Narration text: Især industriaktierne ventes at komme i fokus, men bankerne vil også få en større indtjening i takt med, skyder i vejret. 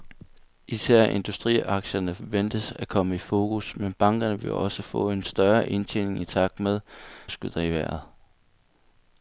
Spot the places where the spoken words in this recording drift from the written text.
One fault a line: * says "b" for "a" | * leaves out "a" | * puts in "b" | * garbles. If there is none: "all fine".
all fine